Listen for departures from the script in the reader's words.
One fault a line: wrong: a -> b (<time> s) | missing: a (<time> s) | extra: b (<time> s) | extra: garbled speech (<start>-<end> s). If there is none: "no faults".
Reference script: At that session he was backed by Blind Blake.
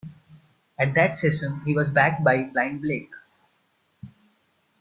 no faults